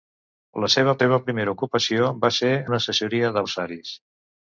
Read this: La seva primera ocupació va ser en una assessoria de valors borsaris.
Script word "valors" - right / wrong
wrong